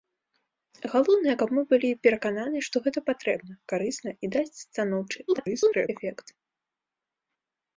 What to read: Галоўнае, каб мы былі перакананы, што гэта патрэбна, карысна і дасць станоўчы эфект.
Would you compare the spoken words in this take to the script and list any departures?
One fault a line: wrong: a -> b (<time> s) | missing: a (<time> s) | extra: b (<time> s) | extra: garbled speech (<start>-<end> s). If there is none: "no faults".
extra: garbled speech (5.3-5.9 s)